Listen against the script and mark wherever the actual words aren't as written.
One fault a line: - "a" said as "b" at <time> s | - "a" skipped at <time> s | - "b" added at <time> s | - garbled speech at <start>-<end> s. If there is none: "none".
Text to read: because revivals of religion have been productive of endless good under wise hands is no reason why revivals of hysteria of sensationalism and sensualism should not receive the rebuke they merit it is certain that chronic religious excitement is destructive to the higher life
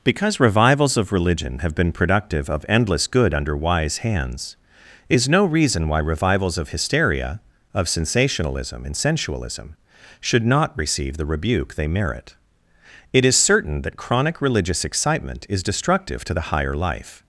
none